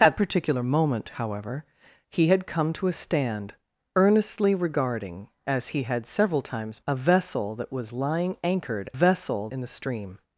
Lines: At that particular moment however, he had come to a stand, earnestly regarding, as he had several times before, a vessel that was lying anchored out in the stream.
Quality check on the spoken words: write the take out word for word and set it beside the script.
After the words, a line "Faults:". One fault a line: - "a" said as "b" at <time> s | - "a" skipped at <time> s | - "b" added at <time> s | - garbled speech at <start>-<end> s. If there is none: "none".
At particular moment however, he had come to a stand, earnestly regarding, as he had several times a vessel that was lying anchored vessel in the stream.
Faults:
- "that" skipped at 0.2 s
- "before" skipped at 6.8 s
- "out" said as "vessel" at 8.9 s